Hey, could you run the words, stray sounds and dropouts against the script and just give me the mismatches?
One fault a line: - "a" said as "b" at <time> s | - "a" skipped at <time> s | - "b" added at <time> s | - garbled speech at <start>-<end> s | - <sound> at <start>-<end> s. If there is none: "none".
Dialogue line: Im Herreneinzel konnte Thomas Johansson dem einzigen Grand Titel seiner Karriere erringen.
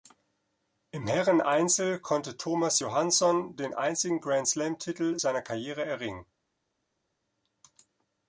- "dem" said as "den" at 3.6 s
- "Slam" added at 4.5 s